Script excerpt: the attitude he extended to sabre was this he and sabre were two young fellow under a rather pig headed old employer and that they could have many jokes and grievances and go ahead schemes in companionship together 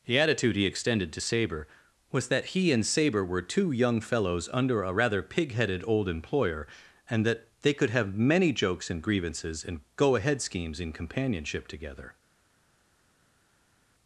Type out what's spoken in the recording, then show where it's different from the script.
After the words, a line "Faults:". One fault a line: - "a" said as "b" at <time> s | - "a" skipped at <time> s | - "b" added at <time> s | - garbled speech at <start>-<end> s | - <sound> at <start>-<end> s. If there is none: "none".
the attitude he extended to sabre was that he and sabre were two young fellows under a rather pig headed old employer and that they could have many jokes and grievances and go ahead schemes in companionship together
Faults:
- "this" said as "that" at 2.3 s
- "fellow" said as "fellows" at 4.0 s